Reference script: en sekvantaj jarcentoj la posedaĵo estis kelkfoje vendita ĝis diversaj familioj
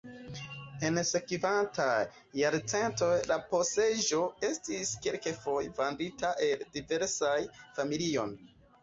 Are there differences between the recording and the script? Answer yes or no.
yes